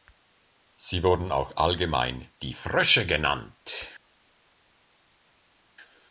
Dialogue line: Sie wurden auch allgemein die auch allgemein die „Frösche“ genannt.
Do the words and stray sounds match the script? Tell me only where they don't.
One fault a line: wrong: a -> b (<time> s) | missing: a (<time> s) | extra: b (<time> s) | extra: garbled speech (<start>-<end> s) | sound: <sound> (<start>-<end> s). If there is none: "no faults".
missing: auch allgemein die (2.5 s)